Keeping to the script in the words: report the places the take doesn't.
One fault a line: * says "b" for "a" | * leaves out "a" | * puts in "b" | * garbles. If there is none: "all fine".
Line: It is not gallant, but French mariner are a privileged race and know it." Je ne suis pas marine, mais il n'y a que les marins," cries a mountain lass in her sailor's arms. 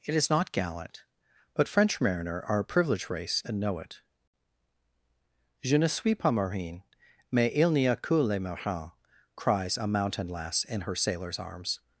all fine